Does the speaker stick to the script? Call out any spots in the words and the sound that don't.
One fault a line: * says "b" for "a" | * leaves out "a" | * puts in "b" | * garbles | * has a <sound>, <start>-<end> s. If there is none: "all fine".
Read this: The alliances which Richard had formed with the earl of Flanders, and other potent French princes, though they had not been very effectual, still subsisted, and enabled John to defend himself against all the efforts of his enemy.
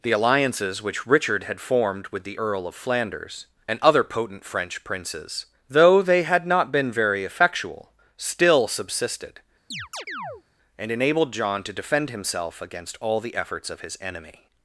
* has a chirp, 9.7-10.4 s